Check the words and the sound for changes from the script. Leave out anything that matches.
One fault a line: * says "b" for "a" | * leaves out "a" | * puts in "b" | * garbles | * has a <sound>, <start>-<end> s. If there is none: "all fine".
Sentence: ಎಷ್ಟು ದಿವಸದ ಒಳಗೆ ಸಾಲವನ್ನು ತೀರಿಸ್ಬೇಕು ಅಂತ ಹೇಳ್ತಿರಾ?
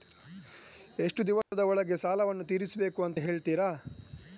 * has a dropout, 1.4-1.5 s